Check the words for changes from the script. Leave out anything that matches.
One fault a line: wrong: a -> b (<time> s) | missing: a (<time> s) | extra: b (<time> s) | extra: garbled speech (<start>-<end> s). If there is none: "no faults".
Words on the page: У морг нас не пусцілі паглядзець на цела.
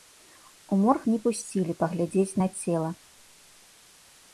missing: нас (1.0 s)